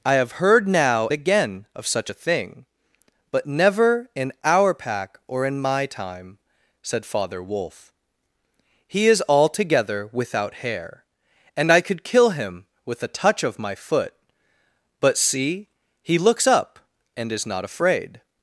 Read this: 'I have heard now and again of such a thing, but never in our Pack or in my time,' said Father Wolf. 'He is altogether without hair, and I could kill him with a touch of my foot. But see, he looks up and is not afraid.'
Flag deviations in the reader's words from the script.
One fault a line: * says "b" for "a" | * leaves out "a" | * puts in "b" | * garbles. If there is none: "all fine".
* leaves out "and"